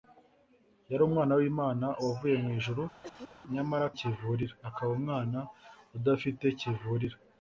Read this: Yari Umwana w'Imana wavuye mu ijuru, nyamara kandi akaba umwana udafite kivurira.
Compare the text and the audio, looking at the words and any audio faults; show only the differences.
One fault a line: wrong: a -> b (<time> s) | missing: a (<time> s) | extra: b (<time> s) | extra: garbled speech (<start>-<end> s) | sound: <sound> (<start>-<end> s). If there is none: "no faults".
sound: cough (3.0-3.4 s)
wrong: kandi -> kivurira (4.0 s)